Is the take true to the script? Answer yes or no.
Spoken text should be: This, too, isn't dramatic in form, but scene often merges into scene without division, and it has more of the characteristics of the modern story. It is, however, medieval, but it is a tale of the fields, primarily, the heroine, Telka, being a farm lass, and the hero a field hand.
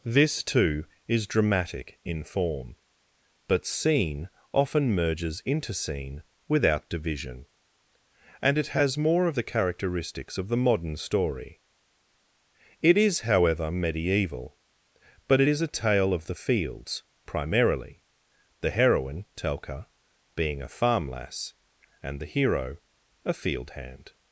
no